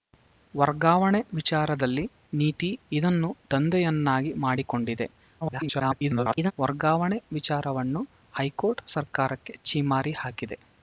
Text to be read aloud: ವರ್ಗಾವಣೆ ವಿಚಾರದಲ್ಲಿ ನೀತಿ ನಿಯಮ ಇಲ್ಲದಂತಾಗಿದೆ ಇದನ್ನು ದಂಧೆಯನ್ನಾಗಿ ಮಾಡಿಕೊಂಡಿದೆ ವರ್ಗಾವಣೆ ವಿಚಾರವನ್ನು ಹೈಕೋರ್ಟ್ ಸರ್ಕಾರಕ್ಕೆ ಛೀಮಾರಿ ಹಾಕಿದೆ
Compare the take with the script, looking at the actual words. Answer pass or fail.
fail